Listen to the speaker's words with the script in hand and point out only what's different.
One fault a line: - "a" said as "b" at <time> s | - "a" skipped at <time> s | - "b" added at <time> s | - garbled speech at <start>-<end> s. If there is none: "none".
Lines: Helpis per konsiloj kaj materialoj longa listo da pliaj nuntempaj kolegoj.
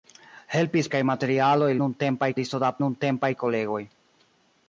- "per konsiloj" skipped at 0.9 s
- "longa" said as "nuntempaj" at 1.8 s
- "pliaj" skipped at 2.7 s